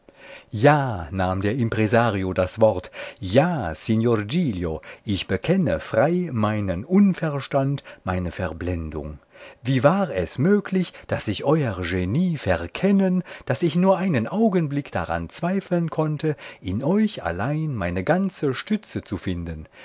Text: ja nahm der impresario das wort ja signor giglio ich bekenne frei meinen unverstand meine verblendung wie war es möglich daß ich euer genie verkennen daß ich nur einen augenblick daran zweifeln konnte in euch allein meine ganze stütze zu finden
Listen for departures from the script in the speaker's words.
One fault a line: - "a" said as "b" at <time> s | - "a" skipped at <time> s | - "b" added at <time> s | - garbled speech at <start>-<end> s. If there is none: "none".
none